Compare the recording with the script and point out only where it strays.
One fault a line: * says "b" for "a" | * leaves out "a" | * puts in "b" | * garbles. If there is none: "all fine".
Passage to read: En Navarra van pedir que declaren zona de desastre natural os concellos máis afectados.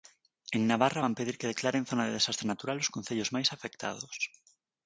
all fine